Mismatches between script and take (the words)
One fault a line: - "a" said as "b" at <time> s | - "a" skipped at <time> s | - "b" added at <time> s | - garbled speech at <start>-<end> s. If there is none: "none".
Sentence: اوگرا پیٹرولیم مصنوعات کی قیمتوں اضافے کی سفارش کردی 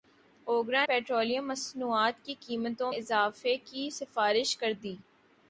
none